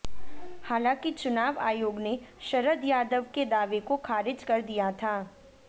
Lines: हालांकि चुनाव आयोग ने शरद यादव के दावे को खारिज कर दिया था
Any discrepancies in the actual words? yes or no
no